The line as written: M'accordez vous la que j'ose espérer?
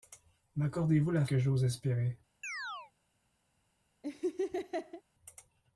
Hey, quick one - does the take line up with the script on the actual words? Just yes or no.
yes